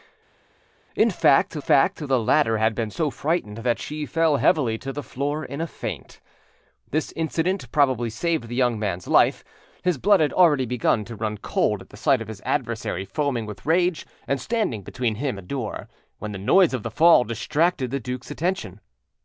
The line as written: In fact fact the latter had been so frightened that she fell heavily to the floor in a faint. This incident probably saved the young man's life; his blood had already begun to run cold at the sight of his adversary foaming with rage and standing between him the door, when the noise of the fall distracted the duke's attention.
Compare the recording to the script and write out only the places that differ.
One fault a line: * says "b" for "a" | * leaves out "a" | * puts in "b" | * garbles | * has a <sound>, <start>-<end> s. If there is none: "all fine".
all fine